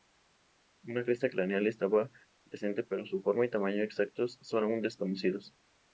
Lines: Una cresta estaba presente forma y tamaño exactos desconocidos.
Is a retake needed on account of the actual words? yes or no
yes